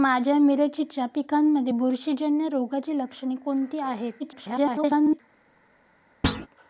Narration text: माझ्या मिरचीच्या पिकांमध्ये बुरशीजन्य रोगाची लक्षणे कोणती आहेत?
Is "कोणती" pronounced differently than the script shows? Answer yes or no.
no